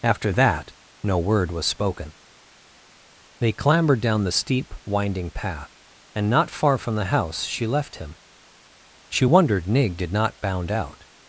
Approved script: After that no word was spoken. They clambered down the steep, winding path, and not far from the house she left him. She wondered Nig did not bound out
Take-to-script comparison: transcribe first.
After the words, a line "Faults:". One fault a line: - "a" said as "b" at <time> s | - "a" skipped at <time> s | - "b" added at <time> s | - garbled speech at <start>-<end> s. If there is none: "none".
After that no word was spoken. They clambered down the steep, winding path, and not far from the house she left him. She wondered Nig did not bound out
Faults:
none